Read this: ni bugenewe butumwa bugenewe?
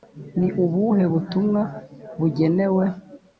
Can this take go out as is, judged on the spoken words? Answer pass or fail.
fail